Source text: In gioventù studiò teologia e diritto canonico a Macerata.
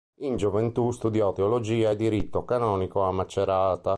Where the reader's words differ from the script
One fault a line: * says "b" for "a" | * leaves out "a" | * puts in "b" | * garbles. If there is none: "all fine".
all fine